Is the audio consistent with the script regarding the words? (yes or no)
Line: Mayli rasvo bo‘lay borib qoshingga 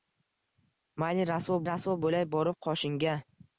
no